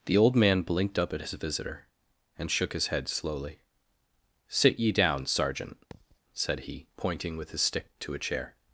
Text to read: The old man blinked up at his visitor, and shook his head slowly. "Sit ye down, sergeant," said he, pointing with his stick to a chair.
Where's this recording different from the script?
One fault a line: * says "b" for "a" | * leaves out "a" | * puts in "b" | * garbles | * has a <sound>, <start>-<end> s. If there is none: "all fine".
* has a thud, 5.9-6.2 s